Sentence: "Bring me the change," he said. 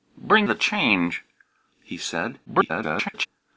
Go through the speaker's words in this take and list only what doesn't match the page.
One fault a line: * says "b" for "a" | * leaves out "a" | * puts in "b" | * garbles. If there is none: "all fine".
* leaves out "me"
* garbles